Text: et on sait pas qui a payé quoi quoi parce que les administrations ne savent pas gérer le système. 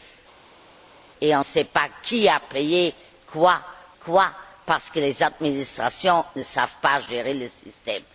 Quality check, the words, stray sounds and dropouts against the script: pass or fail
pass